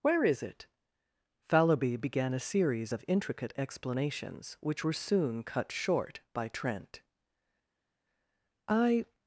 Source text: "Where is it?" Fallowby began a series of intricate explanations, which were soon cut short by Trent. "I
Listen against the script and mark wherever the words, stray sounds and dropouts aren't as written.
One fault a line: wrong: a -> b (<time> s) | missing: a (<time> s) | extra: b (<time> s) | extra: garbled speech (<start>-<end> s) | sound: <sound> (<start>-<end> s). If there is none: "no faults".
no faults